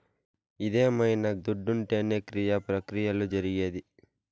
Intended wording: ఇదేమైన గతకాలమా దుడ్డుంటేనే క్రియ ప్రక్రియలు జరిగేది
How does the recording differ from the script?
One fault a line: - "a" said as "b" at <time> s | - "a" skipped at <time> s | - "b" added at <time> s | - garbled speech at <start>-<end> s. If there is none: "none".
- "గతకాలమా" skipped at 1.2 s